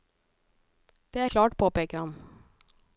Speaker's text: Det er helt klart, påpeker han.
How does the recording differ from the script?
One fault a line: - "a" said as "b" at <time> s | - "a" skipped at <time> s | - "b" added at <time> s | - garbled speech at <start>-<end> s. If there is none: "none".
- "helt" skipped at 1.2 s